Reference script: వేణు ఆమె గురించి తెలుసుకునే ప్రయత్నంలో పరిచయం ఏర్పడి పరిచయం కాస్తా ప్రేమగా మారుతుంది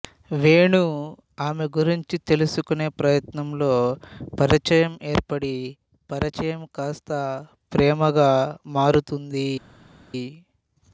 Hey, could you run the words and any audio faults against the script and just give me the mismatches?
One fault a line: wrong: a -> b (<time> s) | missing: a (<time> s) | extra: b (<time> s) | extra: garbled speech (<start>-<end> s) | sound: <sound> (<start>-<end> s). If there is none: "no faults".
no faults